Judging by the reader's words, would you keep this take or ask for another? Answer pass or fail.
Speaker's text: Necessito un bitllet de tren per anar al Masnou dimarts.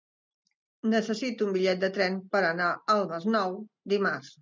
pass